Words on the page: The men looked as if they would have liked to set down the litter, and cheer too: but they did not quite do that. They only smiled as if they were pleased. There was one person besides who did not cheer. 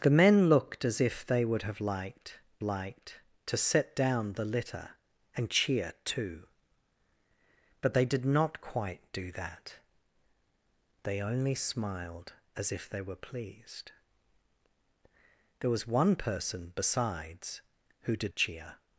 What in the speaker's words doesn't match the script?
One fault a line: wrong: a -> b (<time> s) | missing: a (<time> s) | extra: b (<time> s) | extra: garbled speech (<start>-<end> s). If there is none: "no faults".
extra: liked (2.6 s)
missing: not (18.3 s)